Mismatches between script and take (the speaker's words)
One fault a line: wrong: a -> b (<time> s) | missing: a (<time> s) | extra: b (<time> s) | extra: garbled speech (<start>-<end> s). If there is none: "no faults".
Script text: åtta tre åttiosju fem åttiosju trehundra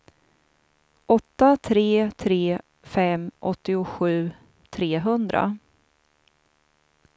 wrong: åttiosju -> tre (2.2 s)